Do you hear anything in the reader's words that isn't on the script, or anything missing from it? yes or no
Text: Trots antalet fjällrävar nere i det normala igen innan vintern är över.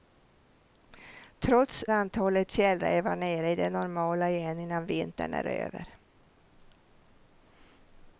no